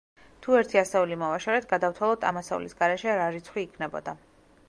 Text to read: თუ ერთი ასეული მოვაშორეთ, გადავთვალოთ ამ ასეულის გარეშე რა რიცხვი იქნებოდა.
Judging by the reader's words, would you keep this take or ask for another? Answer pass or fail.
pass